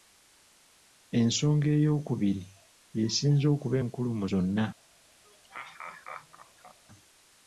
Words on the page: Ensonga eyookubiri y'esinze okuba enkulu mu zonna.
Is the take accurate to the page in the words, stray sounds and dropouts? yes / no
no